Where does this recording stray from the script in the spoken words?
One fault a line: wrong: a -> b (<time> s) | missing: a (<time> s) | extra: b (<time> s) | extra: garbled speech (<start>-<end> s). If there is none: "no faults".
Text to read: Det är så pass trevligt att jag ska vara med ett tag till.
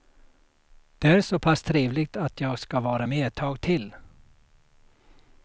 no faults